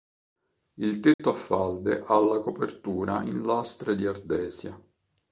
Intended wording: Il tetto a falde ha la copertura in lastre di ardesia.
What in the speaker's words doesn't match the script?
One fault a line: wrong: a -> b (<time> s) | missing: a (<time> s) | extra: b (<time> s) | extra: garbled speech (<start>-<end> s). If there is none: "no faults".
no faults